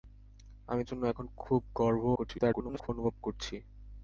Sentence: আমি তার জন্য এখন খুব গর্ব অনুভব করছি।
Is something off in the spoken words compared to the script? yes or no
yes